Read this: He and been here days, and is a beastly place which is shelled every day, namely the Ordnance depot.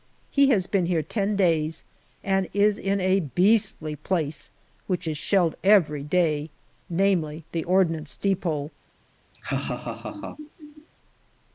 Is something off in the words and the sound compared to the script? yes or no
yes